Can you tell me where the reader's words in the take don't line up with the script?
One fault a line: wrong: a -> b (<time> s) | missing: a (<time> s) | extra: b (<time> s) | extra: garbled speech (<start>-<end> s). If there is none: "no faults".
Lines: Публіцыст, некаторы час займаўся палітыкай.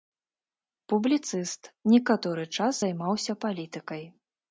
no faults